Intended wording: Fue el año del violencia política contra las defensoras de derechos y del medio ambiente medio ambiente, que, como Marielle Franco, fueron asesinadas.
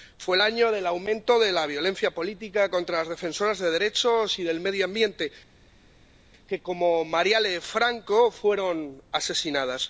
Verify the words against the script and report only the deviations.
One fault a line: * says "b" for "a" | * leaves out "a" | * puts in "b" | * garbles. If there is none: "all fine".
* puts in "aumento de la"
* leaves out "medio ambiente"